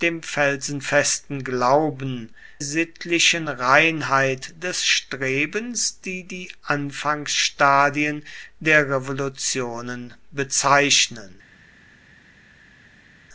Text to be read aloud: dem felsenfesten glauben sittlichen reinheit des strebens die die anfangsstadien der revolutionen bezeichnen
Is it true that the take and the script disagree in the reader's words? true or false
false